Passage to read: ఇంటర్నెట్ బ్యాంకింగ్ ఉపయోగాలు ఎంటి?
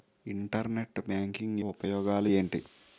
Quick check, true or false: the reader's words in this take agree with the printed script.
true